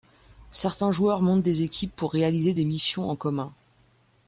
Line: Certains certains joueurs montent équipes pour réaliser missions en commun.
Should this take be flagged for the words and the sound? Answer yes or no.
yes